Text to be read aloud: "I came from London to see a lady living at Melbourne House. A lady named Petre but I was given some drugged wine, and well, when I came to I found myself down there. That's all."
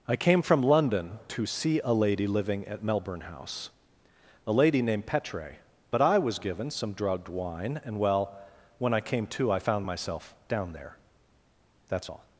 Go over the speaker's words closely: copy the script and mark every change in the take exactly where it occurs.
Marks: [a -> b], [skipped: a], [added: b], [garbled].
"I came from London to see a lady living at Melbourne House. A lady named Petre but I was given some drugged wine, and well, when I came to I found myself down there. That's all."